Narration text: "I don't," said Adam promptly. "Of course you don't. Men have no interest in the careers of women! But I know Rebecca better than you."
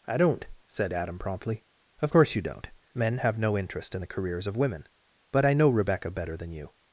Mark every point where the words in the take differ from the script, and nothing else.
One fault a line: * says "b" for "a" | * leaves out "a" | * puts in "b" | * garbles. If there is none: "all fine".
all fine